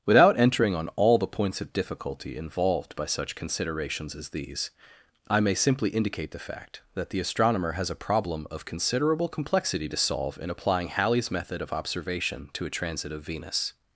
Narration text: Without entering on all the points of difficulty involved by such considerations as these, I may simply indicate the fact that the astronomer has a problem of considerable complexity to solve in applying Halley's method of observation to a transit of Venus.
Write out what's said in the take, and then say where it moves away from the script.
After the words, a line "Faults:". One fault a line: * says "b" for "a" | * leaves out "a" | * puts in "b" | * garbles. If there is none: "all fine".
Without entering on all the points of difficulty involved by such considerations as these, I may simply indicate the fact that the astronomer has a problem of considerable complexity to solve in applying Halley's method of observation to a transit of Venus.
Faults:
all fine